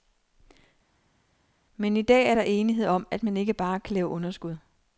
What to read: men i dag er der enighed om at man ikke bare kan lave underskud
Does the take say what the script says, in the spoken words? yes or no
yes